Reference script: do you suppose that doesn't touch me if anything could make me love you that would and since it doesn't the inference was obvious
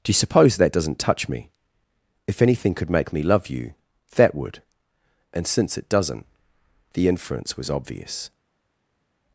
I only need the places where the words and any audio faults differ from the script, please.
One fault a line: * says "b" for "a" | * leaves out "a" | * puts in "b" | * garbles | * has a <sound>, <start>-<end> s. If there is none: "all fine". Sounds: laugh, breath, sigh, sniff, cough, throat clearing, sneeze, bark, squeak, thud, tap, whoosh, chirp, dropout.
all fine